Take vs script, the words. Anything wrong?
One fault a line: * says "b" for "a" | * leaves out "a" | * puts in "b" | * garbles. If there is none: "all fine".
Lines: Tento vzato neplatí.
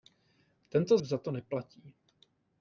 all fine